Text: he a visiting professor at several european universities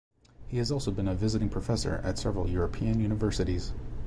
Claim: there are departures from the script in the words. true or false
true